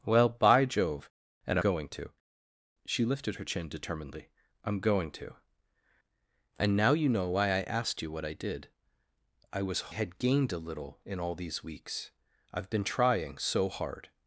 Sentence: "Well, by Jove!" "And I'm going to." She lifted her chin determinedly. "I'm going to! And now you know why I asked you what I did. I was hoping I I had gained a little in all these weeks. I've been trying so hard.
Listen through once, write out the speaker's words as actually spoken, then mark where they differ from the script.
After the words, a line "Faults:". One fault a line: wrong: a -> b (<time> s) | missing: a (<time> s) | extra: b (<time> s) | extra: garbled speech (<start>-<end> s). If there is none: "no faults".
"Well, by Jove!" "And Going to." She lifted her chin determinedly. "I'm going to! And now you know why I asked you what I did. I was had gained a little in all these weeks. I've been trying so hard.
Faults:
missing: I'm (1.6 s)
missing: hoping I I (9.9 s)